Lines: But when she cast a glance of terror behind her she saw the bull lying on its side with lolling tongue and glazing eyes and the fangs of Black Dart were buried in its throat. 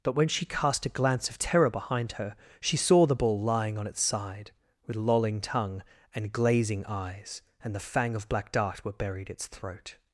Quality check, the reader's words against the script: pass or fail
fail